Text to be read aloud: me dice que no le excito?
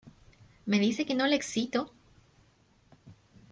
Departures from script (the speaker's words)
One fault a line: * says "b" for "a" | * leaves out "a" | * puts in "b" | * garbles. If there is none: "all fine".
all fine